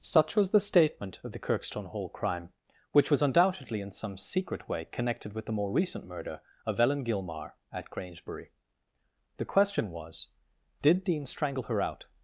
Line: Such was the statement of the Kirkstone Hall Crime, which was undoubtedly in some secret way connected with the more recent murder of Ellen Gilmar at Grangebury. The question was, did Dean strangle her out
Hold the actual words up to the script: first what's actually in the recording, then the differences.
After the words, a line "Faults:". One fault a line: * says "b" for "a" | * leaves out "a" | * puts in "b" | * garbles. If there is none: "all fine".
Such was the statement of the Kirkstone Hall Crime, which was undoubtedly in some secret way connected with the more recent murder of Ellen Gilmar at Grangebury. The question was, did Dean strangle her out
Faults:
all fine